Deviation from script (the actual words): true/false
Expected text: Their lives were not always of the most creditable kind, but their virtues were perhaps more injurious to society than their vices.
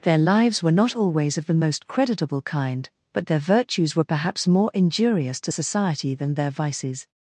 false